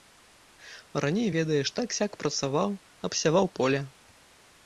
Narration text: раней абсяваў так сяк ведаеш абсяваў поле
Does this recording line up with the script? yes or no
no